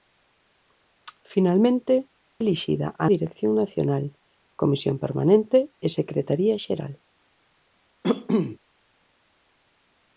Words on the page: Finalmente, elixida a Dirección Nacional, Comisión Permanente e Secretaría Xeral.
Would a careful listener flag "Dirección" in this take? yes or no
no